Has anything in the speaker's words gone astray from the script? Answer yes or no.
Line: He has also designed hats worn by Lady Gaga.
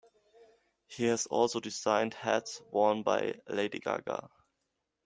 no